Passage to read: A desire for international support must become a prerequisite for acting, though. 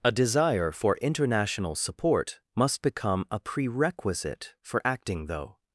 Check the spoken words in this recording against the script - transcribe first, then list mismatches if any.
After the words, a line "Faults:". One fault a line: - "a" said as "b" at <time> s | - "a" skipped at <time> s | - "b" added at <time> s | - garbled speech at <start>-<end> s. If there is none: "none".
A desire for international support must become a prerequisite for acting, though.
Faults:
none